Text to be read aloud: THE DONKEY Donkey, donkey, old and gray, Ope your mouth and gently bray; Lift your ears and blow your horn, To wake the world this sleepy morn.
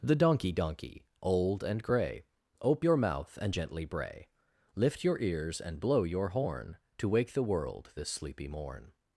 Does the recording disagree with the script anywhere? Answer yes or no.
yes